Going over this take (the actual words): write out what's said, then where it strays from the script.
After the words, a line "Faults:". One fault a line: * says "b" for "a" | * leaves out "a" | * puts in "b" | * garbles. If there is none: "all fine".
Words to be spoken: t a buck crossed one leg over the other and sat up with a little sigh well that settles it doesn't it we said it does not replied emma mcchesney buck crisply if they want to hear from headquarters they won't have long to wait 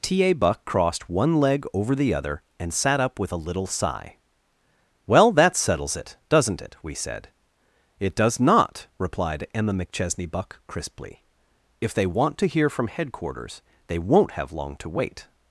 t a buck crossed one leg over the other and sat up with a little sigh well that settles it doesn't it we said it does not replied emma mcchesney buck crisply if they want to hear from headquarters they won't have long to wait
Faults:
all fine